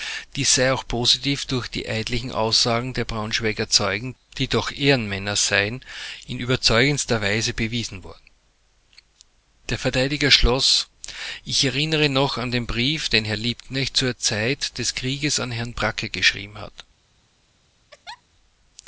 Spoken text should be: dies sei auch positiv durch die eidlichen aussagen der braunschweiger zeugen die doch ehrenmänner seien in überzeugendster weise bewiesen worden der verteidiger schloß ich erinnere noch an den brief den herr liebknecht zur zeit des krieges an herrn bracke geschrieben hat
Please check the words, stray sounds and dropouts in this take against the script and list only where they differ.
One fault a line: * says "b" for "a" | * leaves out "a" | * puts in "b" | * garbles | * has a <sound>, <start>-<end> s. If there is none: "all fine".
* has a laugh, 17.9-18.2 s